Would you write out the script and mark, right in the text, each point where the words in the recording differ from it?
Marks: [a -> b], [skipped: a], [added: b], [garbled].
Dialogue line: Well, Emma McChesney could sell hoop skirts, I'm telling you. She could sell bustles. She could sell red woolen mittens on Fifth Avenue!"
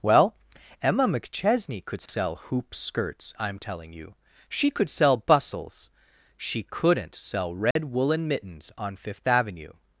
Well, Emma McChesney could sell hoop skirts, I'm telling you. She could sell bustles. She [could -> couldn't] sell red woolen mittens on Fifth Avenue!"